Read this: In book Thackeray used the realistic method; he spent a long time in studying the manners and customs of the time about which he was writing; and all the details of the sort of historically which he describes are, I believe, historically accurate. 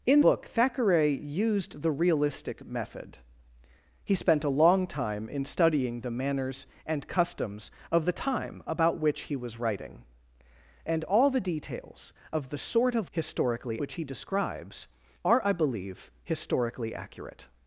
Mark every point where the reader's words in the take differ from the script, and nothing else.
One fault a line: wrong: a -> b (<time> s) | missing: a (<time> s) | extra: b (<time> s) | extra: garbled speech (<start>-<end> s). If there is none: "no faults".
no faults